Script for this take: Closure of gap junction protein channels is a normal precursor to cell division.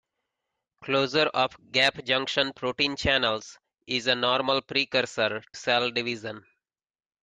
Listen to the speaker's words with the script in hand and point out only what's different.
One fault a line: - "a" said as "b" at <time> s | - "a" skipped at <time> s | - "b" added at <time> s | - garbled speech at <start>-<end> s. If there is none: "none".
- "to" skipped at 5.4 s